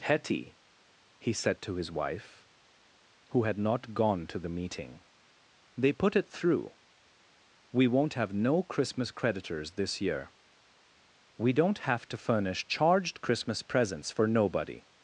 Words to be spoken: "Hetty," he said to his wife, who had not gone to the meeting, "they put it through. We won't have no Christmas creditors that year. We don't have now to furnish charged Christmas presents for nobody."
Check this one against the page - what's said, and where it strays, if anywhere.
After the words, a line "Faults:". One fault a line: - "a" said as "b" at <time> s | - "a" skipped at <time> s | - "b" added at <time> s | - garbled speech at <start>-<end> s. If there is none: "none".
"Hetty," he said to his wife, who had not gone to the meeting, "they put it through. We won't have no Christmas creditors this year. We don't have to furnish charged Christmas presents for nobody."
Faults:
- "that" said as "this" at 9.7 s
- "now" skipped at 12.1 s